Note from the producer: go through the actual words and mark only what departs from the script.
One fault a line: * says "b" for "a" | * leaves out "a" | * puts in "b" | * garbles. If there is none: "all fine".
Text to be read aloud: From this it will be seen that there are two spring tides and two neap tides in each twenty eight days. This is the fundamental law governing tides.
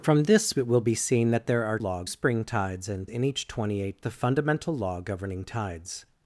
* says "law" for "two"
* leaves out "two neap tides"
* leaves out "days This is"